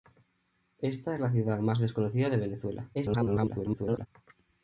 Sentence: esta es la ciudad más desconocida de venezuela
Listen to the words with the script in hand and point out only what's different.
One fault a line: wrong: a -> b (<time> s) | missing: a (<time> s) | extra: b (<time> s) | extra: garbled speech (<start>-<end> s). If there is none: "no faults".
extra: garbled speech (2.9-4.1 s)